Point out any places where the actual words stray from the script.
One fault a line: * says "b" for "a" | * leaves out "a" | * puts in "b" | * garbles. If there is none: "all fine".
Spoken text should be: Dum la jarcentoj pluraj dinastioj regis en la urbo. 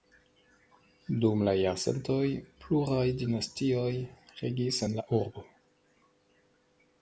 all fine